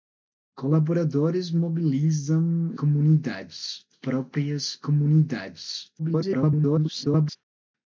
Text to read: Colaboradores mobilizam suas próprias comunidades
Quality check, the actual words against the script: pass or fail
fail